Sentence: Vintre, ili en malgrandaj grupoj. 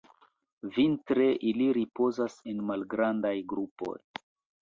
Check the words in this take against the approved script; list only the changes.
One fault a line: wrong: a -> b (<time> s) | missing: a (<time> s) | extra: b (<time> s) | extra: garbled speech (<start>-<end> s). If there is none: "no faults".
extra: ripozas (1.8 s)